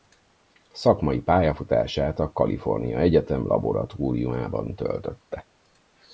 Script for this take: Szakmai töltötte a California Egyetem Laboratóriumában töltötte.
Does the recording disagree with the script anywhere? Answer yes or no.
yes